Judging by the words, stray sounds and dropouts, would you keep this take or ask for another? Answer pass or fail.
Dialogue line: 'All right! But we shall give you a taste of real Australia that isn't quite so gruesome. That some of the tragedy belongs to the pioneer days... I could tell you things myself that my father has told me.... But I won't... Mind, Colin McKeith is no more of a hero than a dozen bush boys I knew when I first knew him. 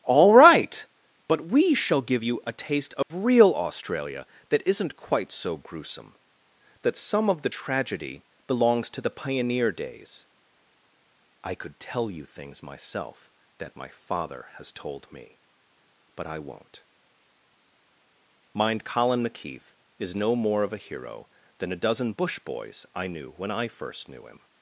fail